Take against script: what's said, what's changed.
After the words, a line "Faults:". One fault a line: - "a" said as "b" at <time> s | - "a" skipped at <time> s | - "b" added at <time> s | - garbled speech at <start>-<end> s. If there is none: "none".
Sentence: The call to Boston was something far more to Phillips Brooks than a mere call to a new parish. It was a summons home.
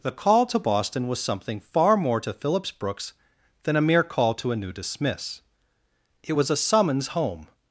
The call to Boston was something far more to Phillips Brooks than a mere call to a new dismiss. It was a summons home.
Faults:
- "parish" said as "dismiss" at 4.7 s